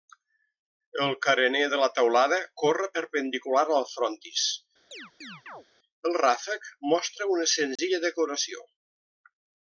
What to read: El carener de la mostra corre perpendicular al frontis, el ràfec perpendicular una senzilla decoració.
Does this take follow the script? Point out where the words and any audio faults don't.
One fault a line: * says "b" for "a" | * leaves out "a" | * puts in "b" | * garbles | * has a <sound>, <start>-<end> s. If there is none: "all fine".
* says "teulada" for "mostra"
* has a chirp, 4.9-5.6 s
* says "mostra" for "perpendicular"
* has a dropout, 7.8-7.8 s